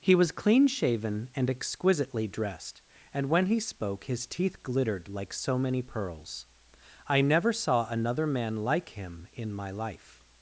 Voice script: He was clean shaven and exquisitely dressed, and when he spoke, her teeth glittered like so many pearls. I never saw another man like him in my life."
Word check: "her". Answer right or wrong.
wrong